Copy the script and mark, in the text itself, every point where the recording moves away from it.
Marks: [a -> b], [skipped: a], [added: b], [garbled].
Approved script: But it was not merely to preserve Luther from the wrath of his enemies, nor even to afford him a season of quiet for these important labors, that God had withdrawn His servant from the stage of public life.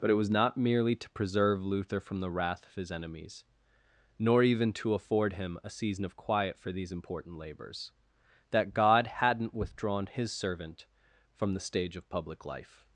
But it was not merely to preserve Luther from the wrath of his enemies, nor even to afford him a season of quiet for these important labors, that God [had -> hadn't] withdrawn His servant from the stage of public life.